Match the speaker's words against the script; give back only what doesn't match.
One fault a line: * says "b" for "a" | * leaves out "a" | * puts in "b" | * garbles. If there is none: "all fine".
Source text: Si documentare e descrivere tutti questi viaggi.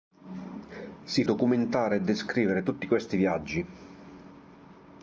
all fine